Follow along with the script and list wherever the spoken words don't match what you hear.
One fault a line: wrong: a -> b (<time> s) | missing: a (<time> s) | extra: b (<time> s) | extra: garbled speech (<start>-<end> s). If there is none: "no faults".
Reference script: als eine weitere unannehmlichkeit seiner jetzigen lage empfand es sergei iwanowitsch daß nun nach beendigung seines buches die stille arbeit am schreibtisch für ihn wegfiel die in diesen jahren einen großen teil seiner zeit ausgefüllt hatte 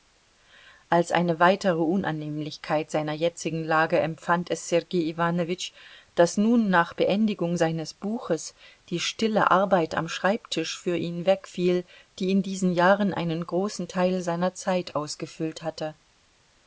no faults